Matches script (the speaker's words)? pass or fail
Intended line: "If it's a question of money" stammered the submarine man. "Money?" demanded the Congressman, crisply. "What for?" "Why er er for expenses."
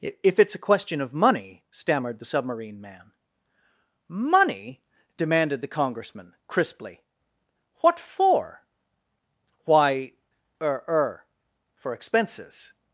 pass